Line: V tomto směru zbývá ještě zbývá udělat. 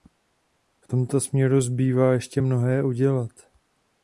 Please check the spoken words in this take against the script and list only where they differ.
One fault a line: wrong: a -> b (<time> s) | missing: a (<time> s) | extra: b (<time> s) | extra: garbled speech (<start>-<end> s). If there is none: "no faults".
wrong: zbývá -> mnohé (2.4 s)